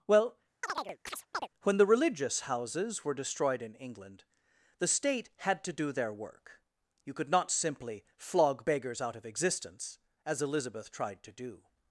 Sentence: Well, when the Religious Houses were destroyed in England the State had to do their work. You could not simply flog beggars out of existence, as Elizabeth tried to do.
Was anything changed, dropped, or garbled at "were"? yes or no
no